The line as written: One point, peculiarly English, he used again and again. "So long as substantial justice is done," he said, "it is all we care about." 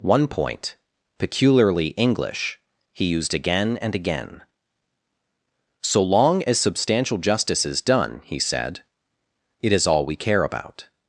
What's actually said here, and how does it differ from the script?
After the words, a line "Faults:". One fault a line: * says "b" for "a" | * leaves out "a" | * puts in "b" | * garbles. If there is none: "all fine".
One point, peculiarly English, he used again and again. "So long as substantial justice is done," he said, "it is all we care about."
Faults:
all fine